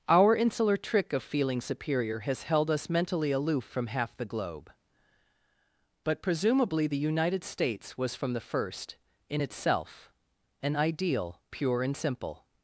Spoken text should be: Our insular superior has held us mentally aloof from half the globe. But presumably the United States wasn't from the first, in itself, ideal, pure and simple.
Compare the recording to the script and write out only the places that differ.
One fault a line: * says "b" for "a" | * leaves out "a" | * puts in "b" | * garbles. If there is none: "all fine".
* puts in "trick of feeling"
* says "was" for "wasn't"
* puts in "an"